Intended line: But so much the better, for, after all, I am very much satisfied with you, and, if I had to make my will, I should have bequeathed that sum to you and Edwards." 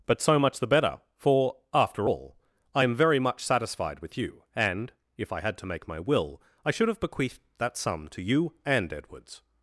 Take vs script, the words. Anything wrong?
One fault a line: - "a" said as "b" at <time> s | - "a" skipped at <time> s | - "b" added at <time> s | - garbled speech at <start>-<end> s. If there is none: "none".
none